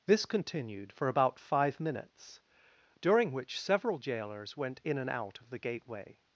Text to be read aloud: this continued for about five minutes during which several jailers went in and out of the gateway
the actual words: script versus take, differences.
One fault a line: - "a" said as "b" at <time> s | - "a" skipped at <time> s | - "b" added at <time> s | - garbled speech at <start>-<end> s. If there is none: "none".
none